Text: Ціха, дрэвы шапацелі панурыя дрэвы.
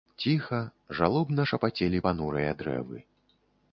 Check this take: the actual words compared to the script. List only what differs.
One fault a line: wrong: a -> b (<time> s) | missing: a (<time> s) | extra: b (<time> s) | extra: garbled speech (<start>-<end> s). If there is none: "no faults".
wrong: дрэвы -> жалобна (1.0 s)